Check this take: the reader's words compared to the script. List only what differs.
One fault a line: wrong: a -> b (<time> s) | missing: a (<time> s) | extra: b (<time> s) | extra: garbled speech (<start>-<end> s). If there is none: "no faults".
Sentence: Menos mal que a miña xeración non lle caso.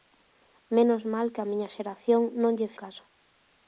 no faults